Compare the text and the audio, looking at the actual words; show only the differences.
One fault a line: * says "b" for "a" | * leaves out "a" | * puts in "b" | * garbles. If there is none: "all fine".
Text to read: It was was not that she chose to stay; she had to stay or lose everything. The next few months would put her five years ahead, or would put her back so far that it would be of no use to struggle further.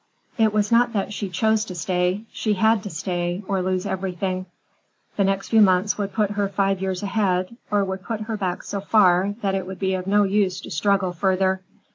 * leaves out "was"